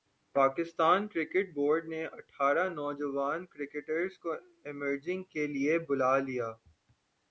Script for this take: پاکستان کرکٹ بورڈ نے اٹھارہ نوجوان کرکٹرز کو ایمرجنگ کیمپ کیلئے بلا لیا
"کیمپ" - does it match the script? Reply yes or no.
no